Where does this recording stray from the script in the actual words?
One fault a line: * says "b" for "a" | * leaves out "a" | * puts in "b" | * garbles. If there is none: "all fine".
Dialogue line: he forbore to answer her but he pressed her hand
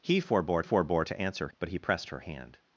* puts in "forbore"
* leaves out "her"